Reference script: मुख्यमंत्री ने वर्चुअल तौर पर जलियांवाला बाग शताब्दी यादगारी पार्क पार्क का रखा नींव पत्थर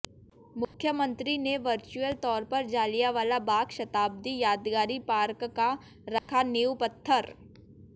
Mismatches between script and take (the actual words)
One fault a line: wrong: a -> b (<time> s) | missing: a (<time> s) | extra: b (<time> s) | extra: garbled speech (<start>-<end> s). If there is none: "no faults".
missing: पार्क (5.4 s)